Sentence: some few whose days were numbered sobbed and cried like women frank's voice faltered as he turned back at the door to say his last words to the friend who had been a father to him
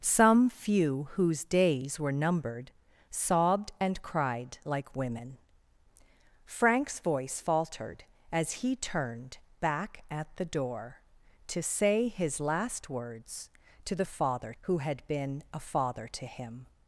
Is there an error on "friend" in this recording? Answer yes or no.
yes